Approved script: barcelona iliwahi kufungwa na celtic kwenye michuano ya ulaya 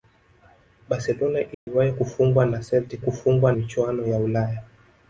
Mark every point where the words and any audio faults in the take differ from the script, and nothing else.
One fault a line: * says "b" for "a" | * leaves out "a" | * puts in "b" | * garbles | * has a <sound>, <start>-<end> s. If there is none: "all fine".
* has a dropout, 1.5-1.7 s
* says "kufungwa" for "kwenye"